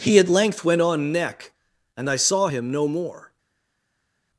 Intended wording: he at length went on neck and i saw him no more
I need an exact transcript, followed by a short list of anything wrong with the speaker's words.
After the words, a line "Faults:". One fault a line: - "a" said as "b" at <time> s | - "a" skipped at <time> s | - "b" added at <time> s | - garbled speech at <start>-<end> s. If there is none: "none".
he at length went on neck and i saw him no more
Faults:
none